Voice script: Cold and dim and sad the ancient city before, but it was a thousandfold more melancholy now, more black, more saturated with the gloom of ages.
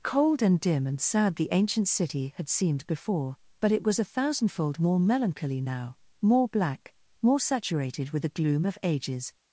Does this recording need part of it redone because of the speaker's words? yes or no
yes